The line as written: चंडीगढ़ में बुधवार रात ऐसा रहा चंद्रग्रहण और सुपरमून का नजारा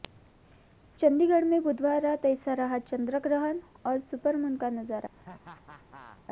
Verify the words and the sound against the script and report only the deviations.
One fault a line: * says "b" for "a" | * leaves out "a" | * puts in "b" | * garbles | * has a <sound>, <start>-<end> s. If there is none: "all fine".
* has a laugh, 5.1-6.2 s